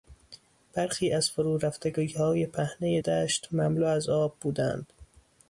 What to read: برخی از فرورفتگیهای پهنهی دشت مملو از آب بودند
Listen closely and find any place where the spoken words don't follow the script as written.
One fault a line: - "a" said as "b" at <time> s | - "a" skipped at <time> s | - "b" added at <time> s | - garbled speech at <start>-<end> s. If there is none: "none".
none